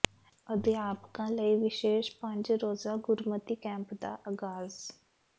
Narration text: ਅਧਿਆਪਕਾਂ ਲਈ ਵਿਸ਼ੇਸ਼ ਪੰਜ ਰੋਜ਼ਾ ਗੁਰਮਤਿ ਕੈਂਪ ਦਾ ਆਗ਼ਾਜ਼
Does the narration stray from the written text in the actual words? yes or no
no